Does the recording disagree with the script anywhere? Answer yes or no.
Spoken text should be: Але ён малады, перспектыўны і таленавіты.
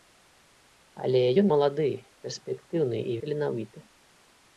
no